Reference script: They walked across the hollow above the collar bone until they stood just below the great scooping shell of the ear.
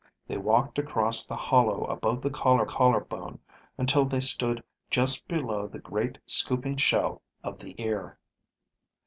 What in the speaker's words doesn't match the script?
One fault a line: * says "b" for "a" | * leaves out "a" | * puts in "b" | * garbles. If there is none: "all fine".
* puts in "collar"